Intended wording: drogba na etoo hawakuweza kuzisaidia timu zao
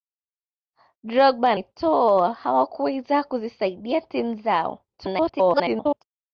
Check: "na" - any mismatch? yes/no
yes